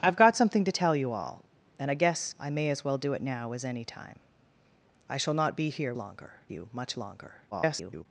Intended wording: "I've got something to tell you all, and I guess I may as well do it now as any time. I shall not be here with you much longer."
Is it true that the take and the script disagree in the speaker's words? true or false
true